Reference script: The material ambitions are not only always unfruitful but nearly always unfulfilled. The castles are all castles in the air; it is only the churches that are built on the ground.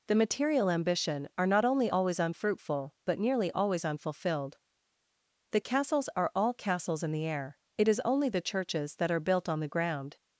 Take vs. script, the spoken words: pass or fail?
fail